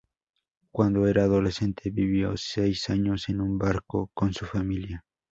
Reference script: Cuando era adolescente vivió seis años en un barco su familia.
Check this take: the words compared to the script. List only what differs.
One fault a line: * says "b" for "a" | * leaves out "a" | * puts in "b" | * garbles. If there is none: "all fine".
* puts in "con"